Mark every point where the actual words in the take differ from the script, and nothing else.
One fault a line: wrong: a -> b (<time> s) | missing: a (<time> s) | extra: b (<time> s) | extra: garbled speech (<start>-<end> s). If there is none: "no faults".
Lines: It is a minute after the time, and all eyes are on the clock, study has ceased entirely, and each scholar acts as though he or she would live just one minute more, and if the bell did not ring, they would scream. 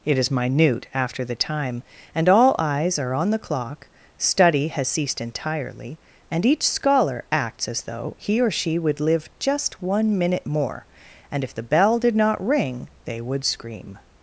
missing: a (0.3 s)